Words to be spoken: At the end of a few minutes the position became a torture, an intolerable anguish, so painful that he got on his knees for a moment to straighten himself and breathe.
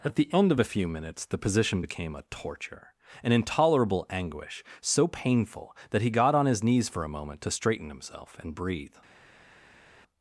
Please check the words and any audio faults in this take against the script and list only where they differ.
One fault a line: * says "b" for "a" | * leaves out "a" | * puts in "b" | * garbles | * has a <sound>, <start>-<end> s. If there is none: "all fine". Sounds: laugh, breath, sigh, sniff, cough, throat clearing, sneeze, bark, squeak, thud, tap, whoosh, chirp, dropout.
all fine